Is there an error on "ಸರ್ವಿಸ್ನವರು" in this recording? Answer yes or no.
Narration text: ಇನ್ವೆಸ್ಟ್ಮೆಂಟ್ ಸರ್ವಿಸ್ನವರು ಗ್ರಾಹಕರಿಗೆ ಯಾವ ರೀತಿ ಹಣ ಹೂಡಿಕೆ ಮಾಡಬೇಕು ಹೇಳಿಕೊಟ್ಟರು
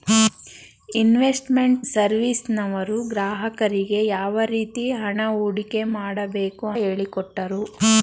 no